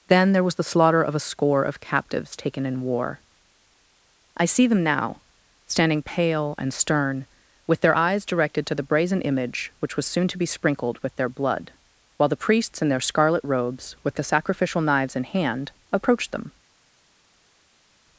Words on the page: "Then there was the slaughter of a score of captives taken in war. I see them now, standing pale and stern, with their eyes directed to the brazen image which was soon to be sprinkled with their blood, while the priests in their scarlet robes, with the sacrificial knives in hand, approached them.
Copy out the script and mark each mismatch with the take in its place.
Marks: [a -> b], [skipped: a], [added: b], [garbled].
"Then there was the slaughter of a score of captives taken in war. I see them now, standing pale and stern, with their eyes directed to the brazen image which was soon to be sprinkled with their blood, while the priests in their scarlet robes, with the sacrificial knives in hand, approached them.